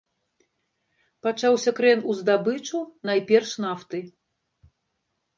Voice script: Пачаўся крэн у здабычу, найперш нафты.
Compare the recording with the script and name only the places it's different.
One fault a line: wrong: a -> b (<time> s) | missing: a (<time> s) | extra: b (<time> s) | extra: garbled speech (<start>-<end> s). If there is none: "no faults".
no faults